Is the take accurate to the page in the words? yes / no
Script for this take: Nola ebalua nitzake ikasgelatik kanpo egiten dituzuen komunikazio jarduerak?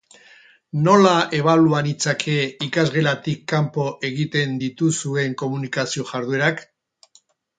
yes